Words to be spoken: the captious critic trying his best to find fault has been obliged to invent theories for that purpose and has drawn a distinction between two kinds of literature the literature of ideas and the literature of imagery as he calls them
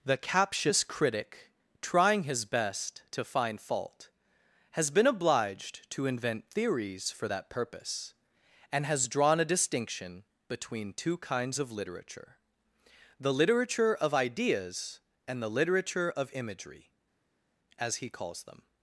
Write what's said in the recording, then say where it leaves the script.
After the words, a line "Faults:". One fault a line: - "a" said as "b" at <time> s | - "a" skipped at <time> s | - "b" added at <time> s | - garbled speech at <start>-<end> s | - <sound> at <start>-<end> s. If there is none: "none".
the captious critic trying his best to find fault has been obliged to invent theories for that purpose and has drawn a distinction between two kinds of literature the literature of ideas and the literature of imagery as he calls them
Faults:
none